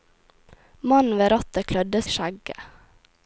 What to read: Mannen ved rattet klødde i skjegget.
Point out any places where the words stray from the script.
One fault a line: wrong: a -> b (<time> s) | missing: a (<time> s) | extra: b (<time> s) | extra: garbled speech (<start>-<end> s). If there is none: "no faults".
no faults